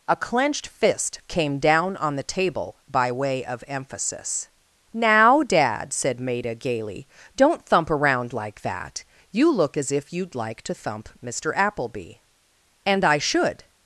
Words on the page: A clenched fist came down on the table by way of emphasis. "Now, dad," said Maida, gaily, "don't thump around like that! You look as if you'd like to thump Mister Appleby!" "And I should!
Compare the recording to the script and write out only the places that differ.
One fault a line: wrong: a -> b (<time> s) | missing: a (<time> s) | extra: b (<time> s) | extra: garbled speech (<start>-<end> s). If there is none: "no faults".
no faults